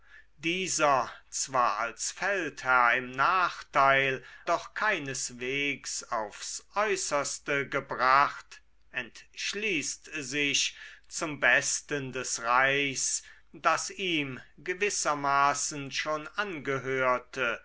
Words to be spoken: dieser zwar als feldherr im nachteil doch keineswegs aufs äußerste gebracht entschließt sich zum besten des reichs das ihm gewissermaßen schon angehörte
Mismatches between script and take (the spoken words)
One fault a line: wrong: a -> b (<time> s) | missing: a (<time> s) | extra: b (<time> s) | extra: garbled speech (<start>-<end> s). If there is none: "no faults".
no faults